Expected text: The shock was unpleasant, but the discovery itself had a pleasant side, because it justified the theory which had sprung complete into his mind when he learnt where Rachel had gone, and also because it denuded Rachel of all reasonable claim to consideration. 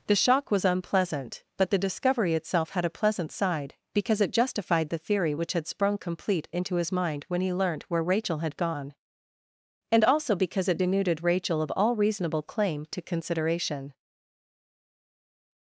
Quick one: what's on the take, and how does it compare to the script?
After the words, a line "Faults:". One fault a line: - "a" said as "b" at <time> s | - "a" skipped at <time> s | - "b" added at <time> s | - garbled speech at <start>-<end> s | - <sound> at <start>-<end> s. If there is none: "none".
The shock was unpleasant, but the discovery itself had a pleasant side, because it justified the theory which had sprung complete into his mind when he learnt where Rachel had gone, and also because it denuded Rachel of all reasonable claim to consideration.
Faults:
none